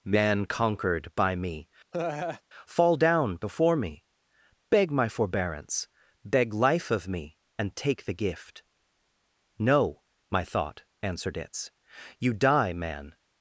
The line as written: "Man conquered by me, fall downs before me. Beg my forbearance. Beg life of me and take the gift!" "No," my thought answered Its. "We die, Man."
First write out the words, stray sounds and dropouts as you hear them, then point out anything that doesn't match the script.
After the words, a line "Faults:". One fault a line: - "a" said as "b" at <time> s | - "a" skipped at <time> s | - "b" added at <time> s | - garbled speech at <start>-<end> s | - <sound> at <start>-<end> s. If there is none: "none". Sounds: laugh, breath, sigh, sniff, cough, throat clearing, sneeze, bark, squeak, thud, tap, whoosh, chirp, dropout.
"Man conquered by me, fall down before me. Beg my forbearance. Beg life of me and take the gift!" "No," my thought answered Its. "You die, Man."
Faults:
- laugh at 1.9-2.4 s
- "downs" said as "down" at 3.0 s
- "We" said as "You" at 12.2 s